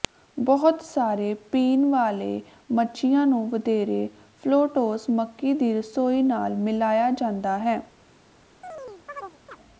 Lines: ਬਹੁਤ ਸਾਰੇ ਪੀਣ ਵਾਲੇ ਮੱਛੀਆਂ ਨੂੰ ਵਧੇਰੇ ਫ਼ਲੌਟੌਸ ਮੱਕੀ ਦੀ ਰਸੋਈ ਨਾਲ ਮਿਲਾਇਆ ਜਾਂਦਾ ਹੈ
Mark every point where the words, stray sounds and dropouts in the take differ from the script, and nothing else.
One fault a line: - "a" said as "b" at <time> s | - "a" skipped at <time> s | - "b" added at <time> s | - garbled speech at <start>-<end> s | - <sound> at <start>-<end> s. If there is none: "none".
- chirp at 8.6-9.6 s